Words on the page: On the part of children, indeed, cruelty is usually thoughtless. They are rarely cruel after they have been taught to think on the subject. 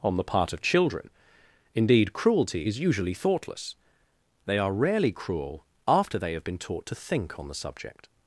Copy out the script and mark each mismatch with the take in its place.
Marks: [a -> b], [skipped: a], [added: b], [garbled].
On the part of children, indeed, cruelty is usually thoughtless. They are rarely cruel after they have been taught to think on the subject.